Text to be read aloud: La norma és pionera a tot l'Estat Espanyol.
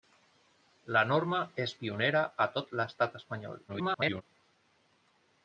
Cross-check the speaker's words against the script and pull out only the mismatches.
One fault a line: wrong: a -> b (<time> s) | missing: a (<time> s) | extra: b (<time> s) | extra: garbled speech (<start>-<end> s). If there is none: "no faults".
extra: garbled speech (3.7-4.2 s)